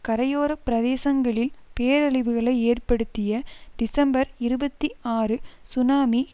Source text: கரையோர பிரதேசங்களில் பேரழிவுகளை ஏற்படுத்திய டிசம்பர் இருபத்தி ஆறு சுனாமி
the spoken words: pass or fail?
pass